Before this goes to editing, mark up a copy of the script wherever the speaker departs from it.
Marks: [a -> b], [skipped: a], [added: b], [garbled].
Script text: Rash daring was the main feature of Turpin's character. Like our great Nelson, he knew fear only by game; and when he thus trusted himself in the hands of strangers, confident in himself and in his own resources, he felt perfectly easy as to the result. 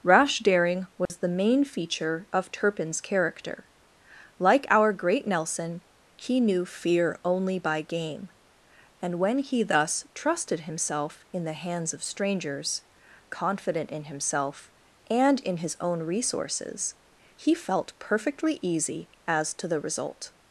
Rash daring was the main feature of Turpin's character. Like our great Nelson, he knew fear only by game; and when he thus trusted himself in the hands of strangers, confident in himself and in his own resources, he felt perfectly easy as to the result.